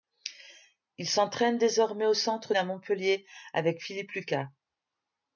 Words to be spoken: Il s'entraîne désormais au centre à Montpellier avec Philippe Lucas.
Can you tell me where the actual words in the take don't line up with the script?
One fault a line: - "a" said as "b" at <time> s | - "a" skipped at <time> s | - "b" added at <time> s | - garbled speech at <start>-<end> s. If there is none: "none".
none